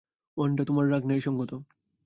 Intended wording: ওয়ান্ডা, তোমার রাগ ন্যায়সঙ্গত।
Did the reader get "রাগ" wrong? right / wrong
right